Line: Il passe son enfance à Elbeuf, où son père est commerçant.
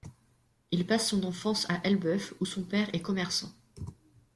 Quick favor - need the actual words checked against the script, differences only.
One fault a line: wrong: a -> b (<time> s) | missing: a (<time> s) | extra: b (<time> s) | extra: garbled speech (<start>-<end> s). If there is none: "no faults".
no faults